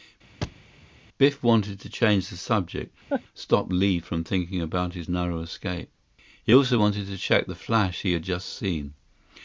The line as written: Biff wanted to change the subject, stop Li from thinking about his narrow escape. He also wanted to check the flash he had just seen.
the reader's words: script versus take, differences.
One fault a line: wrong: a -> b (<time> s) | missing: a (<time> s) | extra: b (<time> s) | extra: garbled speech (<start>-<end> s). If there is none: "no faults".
no faults